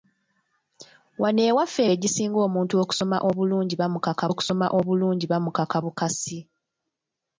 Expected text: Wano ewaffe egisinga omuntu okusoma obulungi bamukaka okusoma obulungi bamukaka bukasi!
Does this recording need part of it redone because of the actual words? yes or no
no